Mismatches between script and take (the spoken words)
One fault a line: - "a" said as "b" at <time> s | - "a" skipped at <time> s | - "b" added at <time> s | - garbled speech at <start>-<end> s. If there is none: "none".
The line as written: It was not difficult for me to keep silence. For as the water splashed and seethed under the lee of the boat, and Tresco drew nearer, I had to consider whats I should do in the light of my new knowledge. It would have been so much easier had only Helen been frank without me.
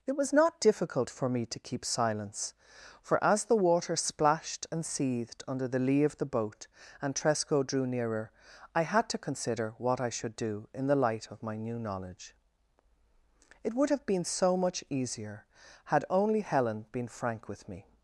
- "whats" said as "what" at 9.8 s
- "without" said as "with" at 17.5 s